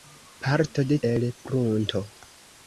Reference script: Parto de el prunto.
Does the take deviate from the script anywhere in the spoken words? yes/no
no